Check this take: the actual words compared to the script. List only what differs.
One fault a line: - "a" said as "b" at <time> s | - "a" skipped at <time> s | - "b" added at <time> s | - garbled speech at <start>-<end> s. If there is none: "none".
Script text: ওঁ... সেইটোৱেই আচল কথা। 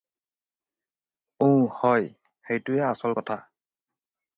- "হয়" added at 1.8 s